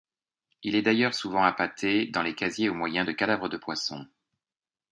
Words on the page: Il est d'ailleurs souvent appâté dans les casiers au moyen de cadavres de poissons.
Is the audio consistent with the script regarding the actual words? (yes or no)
yes